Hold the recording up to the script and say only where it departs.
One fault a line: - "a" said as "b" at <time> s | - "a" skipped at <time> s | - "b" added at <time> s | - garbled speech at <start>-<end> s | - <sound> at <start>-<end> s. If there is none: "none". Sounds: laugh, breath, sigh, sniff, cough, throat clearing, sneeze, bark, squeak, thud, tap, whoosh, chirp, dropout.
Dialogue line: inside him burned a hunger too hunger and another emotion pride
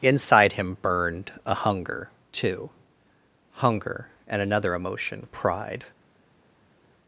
none